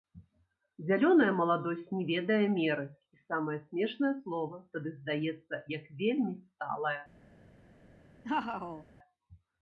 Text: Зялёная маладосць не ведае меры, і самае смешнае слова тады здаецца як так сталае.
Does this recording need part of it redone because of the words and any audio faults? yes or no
yes